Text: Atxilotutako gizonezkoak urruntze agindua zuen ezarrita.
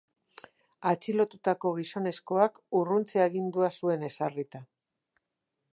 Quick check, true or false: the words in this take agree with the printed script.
true